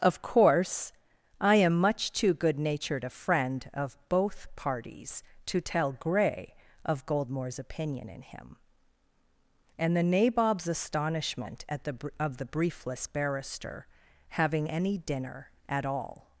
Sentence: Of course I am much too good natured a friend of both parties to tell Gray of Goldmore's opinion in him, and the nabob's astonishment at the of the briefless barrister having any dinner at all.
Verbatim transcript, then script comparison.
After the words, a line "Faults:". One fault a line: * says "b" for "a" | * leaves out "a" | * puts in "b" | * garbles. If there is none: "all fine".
Of course I am much too good natured a friend of both parties to tell Gray of Goldmore's opinion in him, and the nabob's astonishment at the of the briefless barrister having any dinner at all.
Faults:
all fine